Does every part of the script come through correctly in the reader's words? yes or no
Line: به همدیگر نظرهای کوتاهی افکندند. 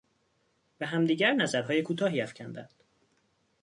yes